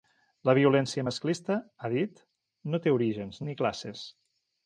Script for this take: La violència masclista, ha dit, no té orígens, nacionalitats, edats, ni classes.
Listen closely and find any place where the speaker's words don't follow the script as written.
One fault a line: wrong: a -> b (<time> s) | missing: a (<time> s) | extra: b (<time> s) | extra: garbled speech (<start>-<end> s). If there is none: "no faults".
missing: nacionalitats edats (3.4 s)